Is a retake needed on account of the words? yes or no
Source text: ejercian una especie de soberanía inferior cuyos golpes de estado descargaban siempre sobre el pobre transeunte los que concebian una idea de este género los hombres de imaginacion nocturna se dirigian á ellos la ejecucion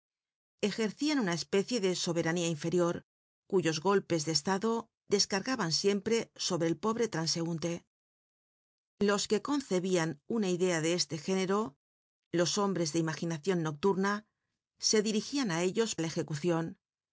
no